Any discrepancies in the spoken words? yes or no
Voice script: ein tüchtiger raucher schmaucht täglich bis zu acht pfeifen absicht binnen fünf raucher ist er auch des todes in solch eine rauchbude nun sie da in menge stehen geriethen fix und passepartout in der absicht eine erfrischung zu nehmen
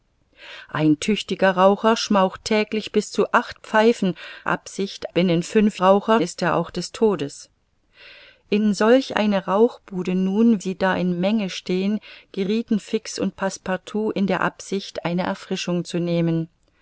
no